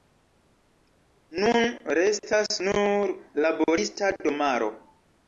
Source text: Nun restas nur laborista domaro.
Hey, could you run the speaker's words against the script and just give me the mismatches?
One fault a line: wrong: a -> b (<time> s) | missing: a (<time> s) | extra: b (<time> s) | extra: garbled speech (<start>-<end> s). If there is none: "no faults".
no faults